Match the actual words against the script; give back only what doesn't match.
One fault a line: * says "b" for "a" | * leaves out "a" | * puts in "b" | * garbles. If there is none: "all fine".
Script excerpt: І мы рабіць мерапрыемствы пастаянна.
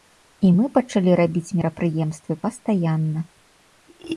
* puts in "пачалі"